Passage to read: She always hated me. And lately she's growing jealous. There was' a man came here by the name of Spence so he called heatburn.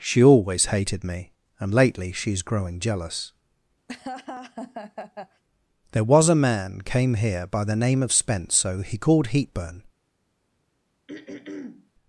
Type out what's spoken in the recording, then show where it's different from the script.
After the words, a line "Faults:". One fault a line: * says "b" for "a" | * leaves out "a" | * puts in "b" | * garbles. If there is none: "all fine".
She always hated me. And lately she's growing jealous. There was' a man came here by the name of Spence so he called heatburn.
Faults:
all fine